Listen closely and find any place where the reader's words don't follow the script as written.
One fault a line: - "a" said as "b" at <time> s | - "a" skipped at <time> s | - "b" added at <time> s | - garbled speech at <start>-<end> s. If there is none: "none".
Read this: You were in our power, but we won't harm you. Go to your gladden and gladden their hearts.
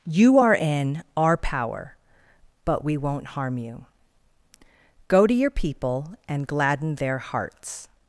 - "were" said as "are" at 0.4 s
- "gladden" said as "people" at 5.5 s